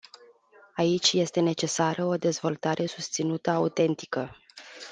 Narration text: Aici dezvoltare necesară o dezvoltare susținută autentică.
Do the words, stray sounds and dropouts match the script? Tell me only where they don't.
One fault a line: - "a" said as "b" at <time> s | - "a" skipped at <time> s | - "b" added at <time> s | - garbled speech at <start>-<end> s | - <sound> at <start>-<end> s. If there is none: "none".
- "dezvoltare" said as "este" at 1.1 s